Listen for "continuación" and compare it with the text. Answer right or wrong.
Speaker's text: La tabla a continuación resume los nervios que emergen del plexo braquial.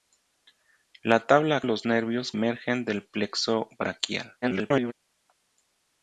wrong